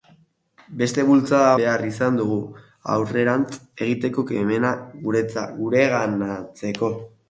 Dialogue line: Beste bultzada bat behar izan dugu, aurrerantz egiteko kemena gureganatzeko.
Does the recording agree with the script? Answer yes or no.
no